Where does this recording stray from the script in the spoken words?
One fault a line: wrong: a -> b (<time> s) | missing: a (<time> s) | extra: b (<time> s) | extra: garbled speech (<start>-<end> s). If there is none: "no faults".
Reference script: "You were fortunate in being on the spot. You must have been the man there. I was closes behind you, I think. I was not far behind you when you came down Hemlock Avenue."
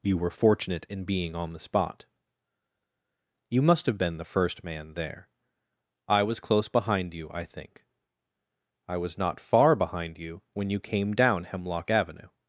extra: first (4.2 s)
wrong: closes -> close (6.4 s)